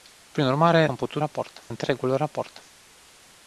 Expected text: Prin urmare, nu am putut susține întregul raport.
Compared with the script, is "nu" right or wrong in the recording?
wrong